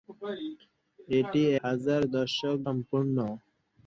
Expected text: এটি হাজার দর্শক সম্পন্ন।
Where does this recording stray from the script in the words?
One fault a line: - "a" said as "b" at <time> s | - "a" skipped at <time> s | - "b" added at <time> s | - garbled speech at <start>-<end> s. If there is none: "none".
none